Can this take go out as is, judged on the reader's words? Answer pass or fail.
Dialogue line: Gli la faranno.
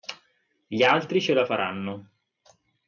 fail